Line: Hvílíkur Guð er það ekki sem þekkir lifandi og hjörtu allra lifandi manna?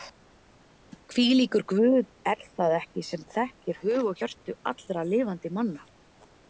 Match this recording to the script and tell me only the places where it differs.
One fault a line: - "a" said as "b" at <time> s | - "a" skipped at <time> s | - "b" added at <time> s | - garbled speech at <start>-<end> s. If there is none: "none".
- "lifandi" said as "hug" at 3.9 s